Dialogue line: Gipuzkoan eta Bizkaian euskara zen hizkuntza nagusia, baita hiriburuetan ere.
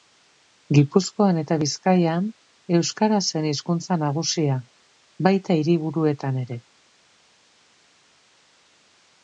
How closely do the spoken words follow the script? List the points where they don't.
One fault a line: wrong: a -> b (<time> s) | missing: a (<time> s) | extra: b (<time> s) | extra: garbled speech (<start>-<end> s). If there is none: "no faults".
no faults